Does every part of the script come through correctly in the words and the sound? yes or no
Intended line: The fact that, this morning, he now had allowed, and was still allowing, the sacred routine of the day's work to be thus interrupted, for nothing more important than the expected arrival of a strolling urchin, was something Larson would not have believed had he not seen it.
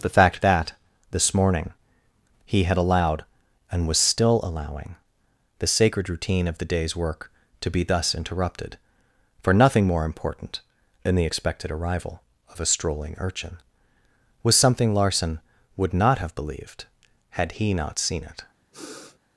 no